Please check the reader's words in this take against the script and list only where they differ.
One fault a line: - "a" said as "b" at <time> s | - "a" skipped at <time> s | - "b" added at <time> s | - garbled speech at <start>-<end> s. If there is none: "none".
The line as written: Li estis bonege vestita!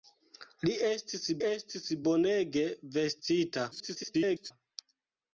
- "estis" added at 1.5 s
- garbled speech at 3.7-4.5 s